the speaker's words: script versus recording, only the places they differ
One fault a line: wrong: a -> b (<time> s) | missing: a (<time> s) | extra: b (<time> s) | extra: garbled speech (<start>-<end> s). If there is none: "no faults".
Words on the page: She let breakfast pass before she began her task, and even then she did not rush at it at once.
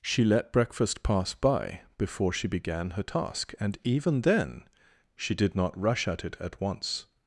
extra: by (1.4 s)